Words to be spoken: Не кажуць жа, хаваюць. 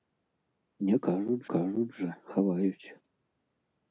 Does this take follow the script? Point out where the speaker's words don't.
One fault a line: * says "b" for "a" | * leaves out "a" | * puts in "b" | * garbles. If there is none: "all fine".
* puts in "кажуць"